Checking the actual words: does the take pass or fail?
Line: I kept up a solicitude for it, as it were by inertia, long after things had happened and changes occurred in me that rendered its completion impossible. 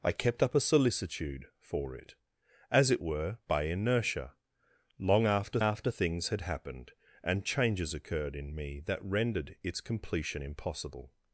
fail